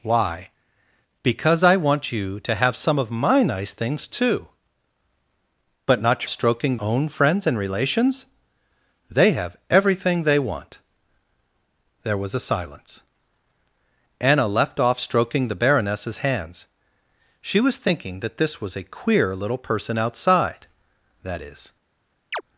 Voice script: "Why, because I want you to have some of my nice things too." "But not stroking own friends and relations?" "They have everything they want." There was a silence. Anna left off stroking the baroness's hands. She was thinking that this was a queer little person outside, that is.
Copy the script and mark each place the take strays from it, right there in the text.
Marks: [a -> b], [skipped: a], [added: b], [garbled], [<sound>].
"Why, because I want you to have some of my nice things too." "But not stroking own friends and relations?" "They have everything they want." There was a silence. Anna left off stroking the baroness's hands. She was thinking that this was a queer little person outside, that is. [chirp]